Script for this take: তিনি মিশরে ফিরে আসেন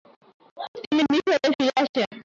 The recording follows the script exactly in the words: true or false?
true